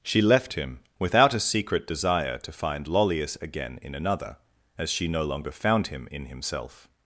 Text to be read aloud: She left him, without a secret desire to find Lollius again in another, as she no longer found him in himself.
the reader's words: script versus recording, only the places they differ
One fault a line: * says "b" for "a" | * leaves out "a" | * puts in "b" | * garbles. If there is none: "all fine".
all fine